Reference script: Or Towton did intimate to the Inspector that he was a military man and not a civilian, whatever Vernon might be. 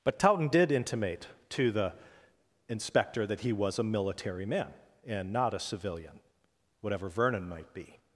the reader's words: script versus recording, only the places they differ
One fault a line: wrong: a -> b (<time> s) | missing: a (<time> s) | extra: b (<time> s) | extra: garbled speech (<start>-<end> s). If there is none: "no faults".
wrong: Or -> But (0.0 s)